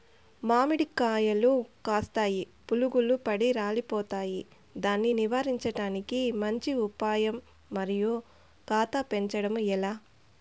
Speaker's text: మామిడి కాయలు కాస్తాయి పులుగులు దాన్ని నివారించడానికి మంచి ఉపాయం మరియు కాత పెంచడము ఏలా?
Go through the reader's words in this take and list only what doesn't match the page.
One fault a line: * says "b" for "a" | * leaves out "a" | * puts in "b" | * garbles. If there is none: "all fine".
* puts in "పడి రాలిపోతాయి"